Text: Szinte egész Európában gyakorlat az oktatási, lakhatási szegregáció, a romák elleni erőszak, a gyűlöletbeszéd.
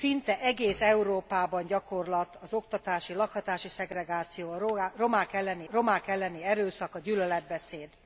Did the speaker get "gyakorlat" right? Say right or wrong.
right